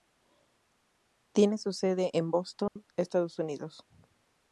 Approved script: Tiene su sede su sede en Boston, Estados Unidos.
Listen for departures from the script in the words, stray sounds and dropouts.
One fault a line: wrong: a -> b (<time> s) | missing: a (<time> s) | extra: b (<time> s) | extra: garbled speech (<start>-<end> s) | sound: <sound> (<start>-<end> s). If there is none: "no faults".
missing: su sede (2.1 s)
sound: dropout (2.7-2.8 s)